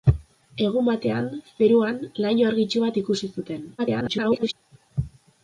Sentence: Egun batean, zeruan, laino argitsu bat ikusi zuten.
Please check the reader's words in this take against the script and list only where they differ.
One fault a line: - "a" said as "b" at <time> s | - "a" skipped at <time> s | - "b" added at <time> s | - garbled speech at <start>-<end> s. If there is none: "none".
- garbled speech at 3.8-4.5 s